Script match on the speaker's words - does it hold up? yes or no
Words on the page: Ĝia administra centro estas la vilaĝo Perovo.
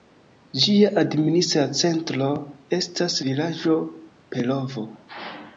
no